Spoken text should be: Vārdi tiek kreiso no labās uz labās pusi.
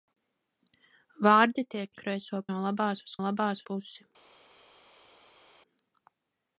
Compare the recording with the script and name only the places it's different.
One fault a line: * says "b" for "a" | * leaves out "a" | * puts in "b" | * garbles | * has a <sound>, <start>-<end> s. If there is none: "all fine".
all fine